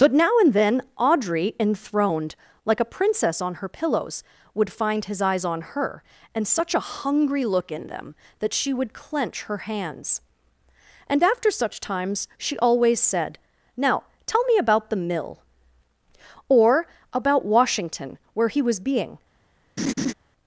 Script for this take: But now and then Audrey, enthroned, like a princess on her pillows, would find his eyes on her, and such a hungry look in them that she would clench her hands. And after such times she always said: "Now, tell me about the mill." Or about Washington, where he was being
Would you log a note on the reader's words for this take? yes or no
no